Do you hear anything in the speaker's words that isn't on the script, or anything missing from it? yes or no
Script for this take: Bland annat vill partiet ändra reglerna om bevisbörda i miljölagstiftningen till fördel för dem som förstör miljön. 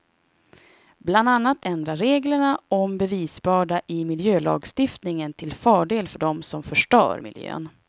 yes